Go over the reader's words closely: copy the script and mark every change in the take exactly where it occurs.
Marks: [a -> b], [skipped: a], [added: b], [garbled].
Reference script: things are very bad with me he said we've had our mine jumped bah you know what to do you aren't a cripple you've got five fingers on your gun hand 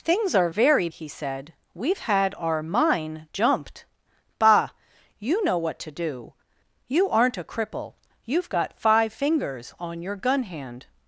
things are very [skipped: bad with me] he said we've had our mine jumped bah you know what to do you aren't a cripple you've got five fingers on your gun hand